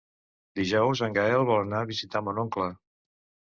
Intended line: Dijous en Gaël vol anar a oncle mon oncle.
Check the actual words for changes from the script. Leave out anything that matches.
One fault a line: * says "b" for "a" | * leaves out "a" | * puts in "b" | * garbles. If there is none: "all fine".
* says "visitar" for "oncle"